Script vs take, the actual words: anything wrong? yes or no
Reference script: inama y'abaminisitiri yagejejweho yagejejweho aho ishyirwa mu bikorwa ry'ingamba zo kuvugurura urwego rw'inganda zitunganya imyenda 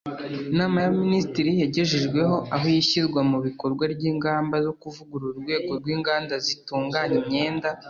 yes